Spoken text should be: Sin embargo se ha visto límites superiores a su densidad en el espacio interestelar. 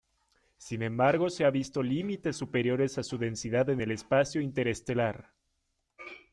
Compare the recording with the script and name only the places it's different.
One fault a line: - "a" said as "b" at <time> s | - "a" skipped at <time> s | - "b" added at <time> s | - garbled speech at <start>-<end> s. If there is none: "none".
none